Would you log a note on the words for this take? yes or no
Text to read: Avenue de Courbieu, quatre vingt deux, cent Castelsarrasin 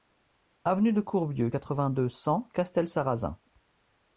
no